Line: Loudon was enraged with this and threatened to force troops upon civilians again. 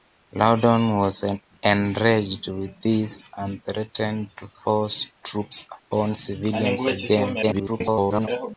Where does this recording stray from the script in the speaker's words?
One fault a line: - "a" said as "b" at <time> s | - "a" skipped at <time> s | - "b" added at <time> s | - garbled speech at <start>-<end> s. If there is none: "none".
- garbled speech at 7.4-8.3 s